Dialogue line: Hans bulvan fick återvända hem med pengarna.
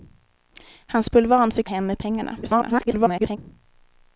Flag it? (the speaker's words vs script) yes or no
yes